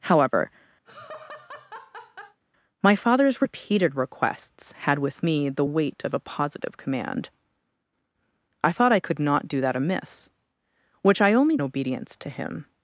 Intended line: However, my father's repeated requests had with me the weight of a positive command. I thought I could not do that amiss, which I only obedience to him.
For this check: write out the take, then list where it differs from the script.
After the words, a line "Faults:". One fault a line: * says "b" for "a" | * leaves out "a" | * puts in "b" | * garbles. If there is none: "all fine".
However, my father's repeated requests had with me the weight of a positive command. I thought I could not do that amiss, which I only obedience to him.
Faults:
all fine